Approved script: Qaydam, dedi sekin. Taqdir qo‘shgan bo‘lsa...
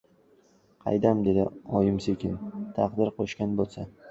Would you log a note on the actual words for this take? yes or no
yes